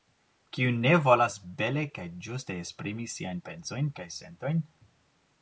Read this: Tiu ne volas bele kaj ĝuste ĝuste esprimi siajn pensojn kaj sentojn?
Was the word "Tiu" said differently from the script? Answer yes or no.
yes